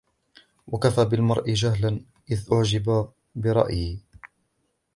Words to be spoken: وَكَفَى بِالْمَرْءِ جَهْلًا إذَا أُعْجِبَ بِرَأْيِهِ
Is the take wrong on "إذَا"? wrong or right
right